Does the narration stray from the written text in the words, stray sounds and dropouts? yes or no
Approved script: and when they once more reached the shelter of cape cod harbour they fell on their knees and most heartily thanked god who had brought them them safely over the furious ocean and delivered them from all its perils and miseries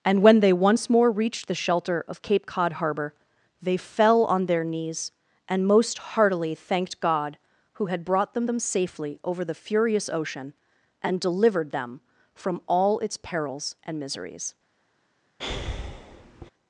yes